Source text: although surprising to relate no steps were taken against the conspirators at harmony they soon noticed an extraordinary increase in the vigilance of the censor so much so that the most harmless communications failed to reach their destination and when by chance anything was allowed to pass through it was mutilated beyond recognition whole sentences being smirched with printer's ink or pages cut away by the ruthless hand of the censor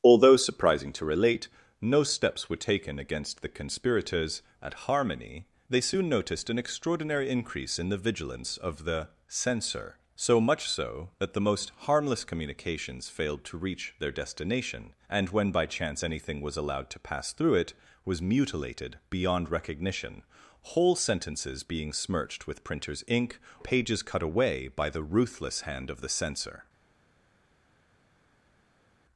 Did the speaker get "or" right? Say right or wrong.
wrong